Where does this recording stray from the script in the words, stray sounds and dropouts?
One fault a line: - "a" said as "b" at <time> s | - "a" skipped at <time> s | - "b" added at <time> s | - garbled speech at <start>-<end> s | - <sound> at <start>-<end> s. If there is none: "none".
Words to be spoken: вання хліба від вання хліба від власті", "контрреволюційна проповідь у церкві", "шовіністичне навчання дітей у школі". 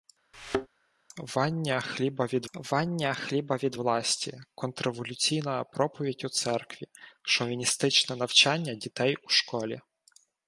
- thud at 0.3-0.7 s